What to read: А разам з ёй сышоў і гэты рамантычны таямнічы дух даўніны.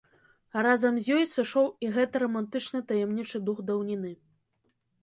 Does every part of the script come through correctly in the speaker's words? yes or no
yes